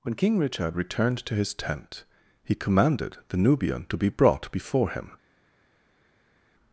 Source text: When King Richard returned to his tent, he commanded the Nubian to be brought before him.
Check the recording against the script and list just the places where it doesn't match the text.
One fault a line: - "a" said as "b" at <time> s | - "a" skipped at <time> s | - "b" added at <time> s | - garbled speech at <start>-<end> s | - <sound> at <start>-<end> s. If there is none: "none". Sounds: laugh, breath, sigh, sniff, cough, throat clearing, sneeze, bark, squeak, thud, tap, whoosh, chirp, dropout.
none